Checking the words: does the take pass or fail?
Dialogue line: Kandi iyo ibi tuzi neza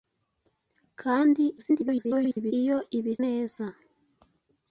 fail